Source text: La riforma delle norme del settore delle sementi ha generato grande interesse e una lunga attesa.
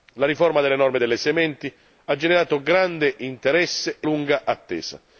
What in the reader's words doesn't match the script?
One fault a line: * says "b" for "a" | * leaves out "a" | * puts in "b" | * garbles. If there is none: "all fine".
* leaves out "del settore"
* leaves out "una"